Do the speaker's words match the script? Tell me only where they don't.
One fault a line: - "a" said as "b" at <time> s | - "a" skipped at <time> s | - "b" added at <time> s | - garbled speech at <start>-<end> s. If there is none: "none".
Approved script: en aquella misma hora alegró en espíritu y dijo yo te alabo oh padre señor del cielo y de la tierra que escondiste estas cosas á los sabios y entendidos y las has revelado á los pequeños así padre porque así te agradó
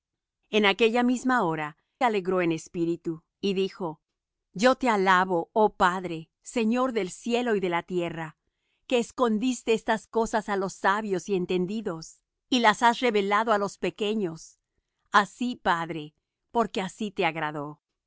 none